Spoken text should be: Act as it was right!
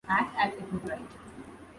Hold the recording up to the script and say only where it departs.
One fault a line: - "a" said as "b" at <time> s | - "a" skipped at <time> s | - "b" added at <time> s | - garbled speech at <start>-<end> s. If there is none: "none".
none